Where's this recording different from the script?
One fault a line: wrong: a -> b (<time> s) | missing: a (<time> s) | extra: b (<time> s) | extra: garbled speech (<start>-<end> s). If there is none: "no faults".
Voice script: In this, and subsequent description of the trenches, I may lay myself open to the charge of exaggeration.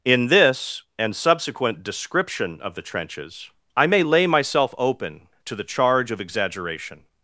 no faults